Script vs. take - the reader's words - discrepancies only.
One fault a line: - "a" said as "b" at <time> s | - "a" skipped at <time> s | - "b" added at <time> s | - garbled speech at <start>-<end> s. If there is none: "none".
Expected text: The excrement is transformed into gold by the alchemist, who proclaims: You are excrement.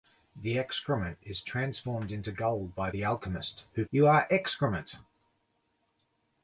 - "proclaims" skipped at 3.8 s